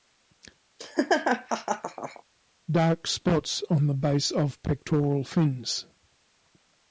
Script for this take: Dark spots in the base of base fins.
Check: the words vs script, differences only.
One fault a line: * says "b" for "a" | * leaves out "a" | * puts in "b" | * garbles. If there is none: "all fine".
* says "on" for "in"
* says "pectoral" for "base"